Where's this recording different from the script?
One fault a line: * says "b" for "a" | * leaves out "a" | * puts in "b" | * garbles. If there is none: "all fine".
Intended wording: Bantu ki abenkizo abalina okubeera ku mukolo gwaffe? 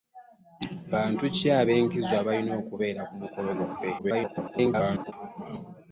* garbles